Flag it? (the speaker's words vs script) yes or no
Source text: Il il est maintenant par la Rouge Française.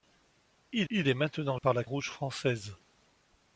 no